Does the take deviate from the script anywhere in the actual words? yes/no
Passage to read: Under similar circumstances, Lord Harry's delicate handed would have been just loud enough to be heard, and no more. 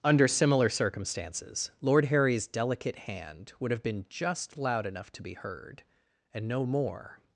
yes